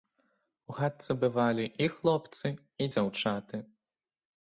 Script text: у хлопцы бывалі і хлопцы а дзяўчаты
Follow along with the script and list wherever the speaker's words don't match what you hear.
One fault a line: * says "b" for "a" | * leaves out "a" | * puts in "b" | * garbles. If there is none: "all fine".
* says "хатцы" for "хлопцы"
* says "і" for "а"